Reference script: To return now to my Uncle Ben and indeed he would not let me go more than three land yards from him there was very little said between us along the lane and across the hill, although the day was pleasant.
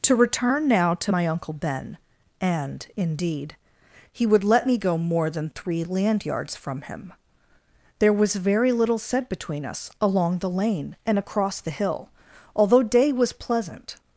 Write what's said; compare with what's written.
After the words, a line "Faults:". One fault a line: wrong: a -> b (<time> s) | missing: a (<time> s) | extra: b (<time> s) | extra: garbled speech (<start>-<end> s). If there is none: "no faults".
To return now to my Uncle Ben and indeed he would let me go more than three land yards from him there was very little said between us along the lane and across the hill, although day was pleasant.
Faults:
missing: not (4.4 s)
missing: the (12.8 s)